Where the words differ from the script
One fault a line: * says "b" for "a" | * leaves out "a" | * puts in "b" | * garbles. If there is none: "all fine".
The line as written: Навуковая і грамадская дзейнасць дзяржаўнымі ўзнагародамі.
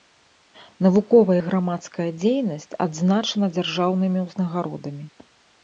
* puts in "адзначана"